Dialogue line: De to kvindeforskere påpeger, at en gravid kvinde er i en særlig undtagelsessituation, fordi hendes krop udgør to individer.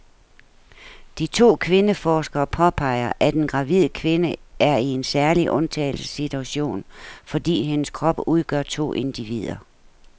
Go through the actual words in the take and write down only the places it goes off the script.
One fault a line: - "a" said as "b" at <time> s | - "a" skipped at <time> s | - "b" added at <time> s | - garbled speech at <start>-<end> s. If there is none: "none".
none